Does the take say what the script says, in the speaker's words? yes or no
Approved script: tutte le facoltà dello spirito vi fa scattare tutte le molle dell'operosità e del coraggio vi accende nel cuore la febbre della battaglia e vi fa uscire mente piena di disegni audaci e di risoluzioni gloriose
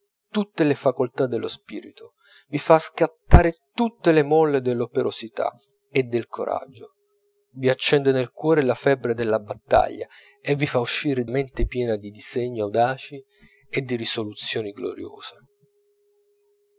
yes